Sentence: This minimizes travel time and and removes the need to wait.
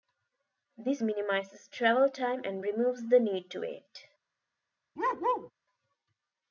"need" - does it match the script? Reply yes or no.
yes